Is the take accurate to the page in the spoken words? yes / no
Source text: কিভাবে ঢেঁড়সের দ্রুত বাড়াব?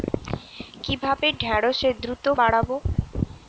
yes